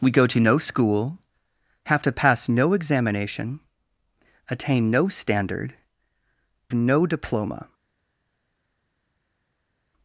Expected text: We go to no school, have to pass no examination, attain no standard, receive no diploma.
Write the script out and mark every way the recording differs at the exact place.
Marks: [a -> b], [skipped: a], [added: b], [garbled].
We go to no school, have to pass no examination, attain no standard, [skipped: receive] no diploma.